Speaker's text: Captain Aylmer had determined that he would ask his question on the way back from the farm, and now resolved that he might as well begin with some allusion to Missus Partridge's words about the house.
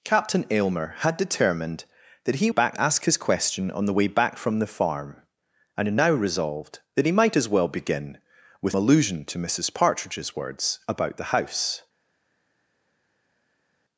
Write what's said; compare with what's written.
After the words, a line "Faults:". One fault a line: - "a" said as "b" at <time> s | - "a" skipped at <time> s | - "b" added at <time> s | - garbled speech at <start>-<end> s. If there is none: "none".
Captain Aylmer had determined that he back ask his question on the way back from the farm, and now resolved that he might as well begin with allusion to Missus Partridge's words about the house.
Faults:
- "would" said as "back" at 2.5 s
- "some" skipped at 8.8 s